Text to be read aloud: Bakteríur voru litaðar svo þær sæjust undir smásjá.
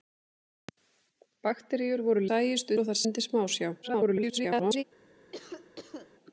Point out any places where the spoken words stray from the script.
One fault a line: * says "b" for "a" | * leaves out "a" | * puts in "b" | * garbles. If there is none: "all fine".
* says "sæjust" for "litaðar"
* leaves out "sæjust"
* garbles